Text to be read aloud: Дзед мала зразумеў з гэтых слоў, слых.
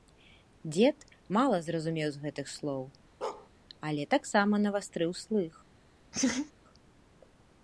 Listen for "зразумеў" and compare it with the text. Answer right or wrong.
right